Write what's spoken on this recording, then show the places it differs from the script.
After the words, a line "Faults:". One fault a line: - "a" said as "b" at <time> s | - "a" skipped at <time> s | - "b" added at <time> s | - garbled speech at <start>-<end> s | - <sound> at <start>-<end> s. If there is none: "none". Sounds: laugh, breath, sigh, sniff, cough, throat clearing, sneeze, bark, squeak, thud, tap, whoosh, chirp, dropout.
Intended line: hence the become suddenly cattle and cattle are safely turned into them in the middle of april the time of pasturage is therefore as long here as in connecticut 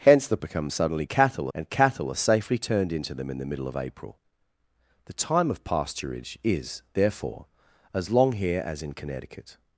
hence the become suddenly cattle and cattle are safely turned into them in the middle of april the time of pasturage is therefore as long here as in connecticut
Faults:
none